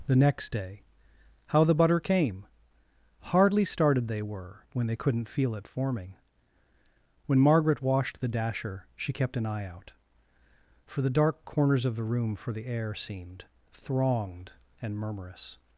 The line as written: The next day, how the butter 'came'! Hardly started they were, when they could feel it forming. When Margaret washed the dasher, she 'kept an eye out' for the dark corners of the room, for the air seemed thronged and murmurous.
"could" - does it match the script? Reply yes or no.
no